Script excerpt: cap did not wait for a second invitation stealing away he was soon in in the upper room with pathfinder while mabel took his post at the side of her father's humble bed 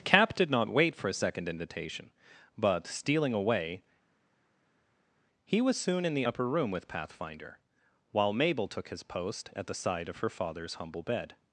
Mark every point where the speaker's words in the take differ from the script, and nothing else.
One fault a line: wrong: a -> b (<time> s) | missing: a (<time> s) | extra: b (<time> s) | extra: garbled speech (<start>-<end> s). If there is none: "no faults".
extra: but (2.6 s)
missing: in (6.1 s)